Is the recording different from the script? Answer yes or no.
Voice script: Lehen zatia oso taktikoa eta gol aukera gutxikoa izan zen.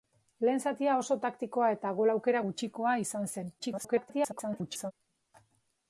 yes